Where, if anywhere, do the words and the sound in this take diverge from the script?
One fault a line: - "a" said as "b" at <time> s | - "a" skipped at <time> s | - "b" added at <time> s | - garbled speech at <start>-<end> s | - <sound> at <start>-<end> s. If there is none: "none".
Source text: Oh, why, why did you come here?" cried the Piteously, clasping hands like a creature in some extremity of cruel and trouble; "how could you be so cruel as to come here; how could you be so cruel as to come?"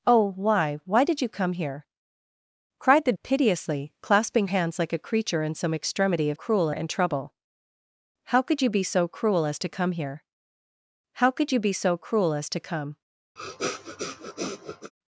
- sniff at 13.4-14.9 s